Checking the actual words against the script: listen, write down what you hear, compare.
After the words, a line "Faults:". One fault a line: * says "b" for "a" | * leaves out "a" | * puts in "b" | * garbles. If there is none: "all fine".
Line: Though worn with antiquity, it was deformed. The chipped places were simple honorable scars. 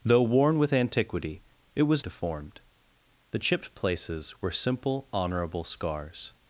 Though worn with antiquity, it was deformed. The chipped places were simple honorable scars.
Faults:
all fine